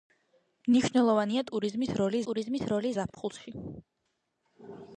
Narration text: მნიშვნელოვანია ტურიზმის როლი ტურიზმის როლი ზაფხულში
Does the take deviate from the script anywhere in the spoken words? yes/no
no